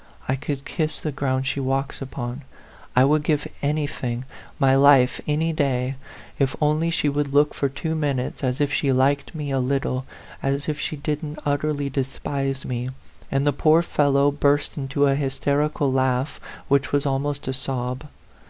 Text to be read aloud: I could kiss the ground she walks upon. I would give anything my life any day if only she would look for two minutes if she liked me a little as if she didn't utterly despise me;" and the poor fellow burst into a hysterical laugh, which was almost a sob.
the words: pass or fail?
fail